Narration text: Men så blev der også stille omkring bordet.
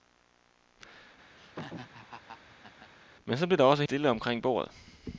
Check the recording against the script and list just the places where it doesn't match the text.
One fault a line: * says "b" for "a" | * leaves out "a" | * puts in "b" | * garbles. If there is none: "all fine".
all fine